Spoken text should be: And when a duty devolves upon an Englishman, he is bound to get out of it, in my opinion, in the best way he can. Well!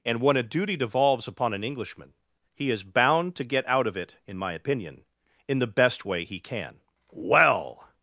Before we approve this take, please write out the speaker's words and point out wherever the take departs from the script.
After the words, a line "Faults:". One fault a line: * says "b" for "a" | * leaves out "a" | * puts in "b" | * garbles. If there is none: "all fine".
And when a duty devolves upon an Englishman, he is bound to get out of it, in my opinion, in the best way he can. Well!
Faults:
all fine